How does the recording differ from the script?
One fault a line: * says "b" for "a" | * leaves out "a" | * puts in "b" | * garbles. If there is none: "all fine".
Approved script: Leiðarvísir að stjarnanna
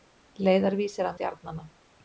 all fine